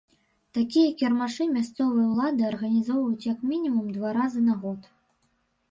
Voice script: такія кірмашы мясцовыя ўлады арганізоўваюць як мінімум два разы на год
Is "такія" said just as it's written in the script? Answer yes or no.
yes